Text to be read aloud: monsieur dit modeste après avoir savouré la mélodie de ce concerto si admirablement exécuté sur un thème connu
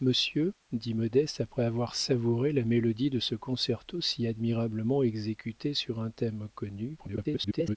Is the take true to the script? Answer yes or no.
no